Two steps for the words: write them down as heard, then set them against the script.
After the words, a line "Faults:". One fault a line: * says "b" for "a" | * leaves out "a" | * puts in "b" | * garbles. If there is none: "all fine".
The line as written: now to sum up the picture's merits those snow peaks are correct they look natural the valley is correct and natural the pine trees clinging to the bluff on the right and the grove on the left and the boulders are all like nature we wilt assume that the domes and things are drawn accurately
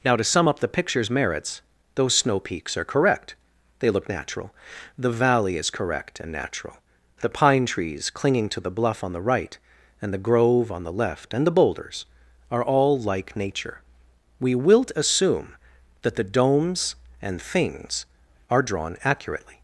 now to sum up the picture's merits those snow peaks are correct they look natural the valley is correct and natural the pine trees clinging to the bluff on the right and the grove on the left and the boulders are all like nature we wilt assume that the domes and things are drawn accurately
Faults:
all fine